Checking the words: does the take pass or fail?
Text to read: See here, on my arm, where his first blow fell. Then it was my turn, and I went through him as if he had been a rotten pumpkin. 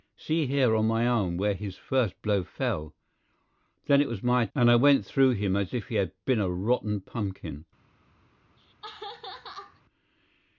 fail